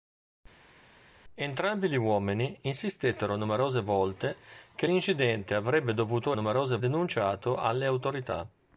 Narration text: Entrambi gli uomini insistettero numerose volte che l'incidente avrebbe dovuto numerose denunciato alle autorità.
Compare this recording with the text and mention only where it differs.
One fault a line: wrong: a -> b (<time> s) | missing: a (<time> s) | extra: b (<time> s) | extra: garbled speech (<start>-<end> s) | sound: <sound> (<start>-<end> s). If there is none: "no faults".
no faults